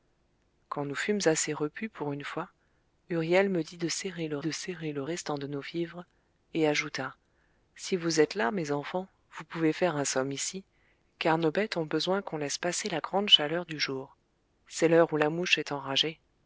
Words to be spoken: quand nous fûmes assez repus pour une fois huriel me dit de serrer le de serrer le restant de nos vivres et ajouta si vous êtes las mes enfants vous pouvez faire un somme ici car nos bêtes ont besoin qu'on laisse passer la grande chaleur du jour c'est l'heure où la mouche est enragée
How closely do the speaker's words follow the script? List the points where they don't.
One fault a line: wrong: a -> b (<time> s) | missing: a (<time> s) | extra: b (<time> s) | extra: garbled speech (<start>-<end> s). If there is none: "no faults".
no faults